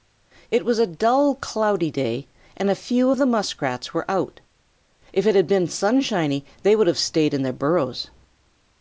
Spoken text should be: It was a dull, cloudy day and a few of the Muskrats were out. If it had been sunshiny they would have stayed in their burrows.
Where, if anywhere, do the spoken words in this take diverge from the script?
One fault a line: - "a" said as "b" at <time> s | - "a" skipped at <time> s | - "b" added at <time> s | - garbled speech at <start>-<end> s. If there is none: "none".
none